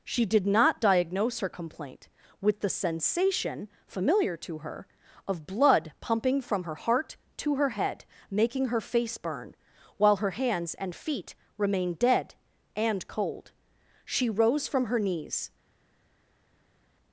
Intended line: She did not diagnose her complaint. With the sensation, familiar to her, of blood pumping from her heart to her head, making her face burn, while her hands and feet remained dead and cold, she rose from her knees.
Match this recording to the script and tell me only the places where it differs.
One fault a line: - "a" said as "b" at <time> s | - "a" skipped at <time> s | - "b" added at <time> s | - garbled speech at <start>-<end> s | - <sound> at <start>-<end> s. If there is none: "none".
none